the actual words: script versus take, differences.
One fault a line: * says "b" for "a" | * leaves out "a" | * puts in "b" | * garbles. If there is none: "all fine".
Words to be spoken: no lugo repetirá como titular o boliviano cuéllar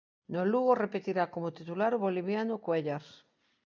all fine